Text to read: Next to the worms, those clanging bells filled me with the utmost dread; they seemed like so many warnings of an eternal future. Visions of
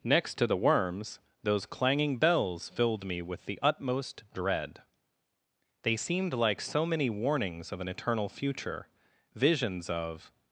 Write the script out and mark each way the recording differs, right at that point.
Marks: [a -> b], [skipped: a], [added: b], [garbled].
Next to the worms, those clanging bells filled me with the utmost dread; they seemed like so many warnings of an eternal future. Visions of